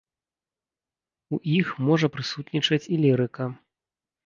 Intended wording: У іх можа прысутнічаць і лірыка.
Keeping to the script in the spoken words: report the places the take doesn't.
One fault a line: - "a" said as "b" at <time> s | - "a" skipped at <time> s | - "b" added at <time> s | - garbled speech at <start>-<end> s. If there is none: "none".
none